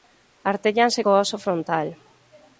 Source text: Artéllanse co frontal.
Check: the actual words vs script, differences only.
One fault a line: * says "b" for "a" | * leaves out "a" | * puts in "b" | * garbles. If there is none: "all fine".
* puts in "óso"